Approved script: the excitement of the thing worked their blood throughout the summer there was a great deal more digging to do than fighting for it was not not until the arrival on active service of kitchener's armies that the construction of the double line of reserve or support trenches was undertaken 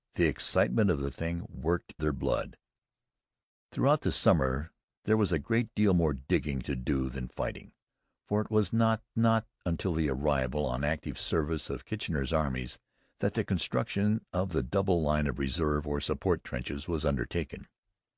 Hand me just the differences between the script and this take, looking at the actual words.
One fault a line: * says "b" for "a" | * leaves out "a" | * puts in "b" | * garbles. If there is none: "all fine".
all fine